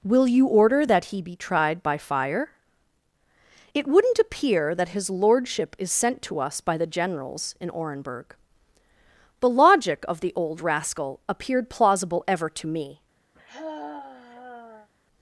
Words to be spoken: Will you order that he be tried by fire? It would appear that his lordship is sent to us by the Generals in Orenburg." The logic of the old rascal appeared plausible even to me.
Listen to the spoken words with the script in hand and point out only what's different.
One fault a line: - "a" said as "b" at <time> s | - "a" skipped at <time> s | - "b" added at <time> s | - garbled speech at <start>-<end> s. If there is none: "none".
- "would" said as "wouldn't" at 3.9 s
- "even" said as "ever" at 12.3 s